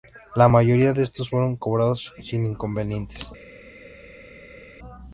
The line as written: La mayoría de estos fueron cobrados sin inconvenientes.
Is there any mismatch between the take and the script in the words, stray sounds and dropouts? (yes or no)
no